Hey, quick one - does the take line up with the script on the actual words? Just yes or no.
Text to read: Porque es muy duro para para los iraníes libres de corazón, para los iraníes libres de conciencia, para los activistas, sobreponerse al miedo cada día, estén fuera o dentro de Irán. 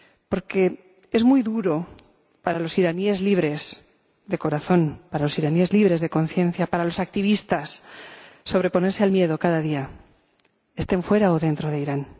no